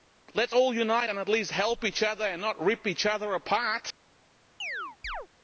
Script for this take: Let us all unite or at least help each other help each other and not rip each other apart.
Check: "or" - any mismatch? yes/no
yes